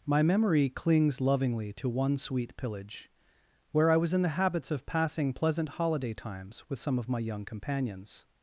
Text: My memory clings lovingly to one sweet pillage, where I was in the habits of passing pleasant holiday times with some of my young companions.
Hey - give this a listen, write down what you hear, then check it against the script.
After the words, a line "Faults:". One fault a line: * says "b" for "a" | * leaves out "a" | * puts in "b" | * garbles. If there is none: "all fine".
My memory clings lovingly to one sweet pillage, where I was in the habits of passing pleasant holiday times with some of my young companions.
Faults:
all fine